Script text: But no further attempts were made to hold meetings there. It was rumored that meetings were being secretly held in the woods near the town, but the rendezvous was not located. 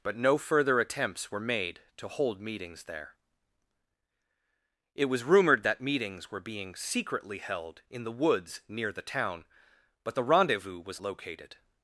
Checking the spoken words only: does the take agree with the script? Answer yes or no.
no